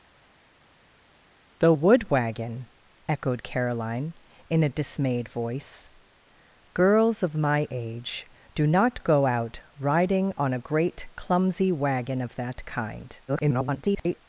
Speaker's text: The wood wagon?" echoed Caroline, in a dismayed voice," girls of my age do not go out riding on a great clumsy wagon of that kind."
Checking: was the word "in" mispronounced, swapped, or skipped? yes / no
no